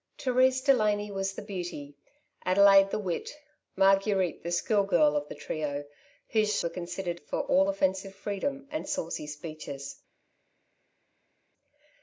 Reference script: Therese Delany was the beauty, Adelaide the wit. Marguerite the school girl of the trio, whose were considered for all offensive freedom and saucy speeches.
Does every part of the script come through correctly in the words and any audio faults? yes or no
yes